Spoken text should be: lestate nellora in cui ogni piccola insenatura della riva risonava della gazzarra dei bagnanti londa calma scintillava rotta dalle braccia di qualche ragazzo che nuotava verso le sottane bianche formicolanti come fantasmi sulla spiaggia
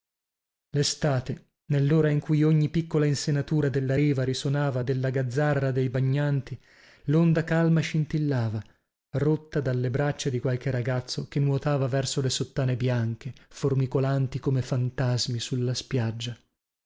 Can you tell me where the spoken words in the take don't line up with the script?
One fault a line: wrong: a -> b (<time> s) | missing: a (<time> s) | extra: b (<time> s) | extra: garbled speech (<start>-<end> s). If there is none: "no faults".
no faults